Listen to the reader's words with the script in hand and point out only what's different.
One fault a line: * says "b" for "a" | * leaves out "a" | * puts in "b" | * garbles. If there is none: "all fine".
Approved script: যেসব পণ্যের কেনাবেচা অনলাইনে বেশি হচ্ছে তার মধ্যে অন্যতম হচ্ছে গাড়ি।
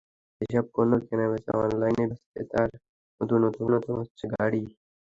* leaves out "বেশি"
* puts in "অন্যতম"